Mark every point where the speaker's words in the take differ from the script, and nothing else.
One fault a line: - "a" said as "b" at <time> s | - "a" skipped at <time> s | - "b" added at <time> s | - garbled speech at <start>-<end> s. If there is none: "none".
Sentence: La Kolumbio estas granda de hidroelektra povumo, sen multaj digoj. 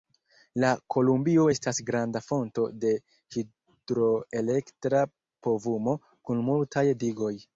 - "fonto" added at 2.3 s
- "sen" said as "kun" at 6.3 s